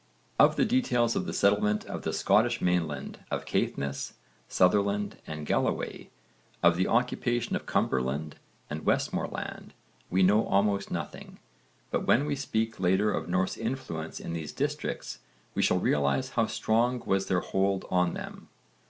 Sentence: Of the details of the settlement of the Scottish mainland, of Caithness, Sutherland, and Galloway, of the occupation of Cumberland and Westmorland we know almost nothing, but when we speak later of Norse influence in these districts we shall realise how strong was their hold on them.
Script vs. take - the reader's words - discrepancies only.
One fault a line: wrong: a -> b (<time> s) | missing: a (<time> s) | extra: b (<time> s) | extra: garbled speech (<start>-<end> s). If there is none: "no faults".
no faults